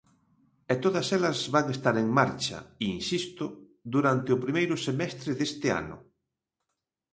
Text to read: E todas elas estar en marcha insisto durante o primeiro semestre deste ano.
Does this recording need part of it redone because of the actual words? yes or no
yes